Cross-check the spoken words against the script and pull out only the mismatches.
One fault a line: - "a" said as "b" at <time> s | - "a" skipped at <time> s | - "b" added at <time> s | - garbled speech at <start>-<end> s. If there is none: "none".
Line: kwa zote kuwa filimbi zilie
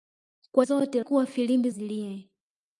none